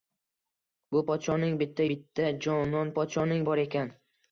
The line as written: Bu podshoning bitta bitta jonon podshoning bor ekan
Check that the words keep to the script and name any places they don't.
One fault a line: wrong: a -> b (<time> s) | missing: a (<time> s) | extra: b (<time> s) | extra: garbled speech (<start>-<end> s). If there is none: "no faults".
no faults